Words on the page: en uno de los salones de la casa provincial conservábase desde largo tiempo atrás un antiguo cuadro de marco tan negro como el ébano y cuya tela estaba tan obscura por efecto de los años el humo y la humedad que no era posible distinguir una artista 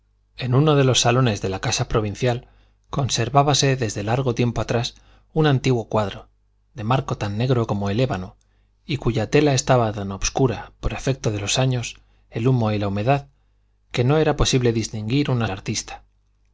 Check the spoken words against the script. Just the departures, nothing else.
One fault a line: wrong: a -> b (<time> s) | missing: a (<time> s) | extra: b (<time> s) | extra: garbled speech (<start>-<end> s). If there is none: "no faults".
no faults